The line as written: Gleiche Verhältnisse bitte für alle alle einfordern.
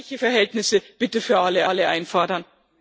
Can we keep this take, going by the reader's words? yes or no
yes